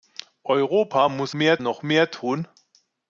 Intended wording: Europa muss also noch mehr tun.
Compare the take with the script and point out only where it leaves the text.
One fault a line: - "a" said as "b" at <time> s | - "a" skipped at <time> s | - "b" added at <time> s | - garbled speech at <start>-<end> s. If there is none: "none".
- "also" said as "mehr" at 1.3 s